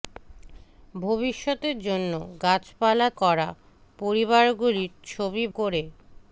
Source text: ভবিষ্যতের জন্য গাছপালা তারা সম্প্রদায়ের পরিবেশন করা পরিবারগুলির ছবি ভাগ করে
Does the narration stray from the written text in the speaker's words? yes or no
yes